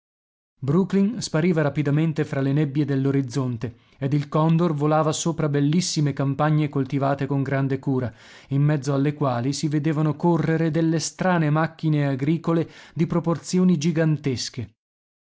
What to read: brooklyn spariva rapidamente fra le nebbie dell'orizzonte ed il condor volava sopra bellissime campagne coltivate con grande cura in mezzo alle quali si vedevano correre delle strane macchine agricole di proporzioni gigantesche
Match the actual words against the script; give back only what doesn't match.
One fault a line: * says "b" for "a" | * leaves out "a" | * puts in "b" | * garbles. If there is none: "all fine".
all fine